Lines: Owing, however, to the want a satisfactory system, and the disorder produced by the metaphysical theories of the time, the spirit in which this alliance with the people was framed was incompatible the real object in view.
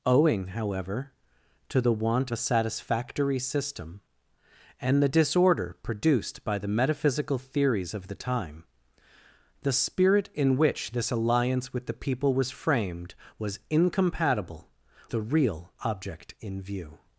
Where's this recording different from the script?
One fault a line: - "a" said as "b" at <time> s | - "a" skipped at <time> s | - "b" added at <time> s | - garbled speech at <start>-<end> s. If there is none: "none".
none